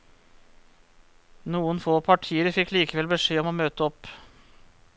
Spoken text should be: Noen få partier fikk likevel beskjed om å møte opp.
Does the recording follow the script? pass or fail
pass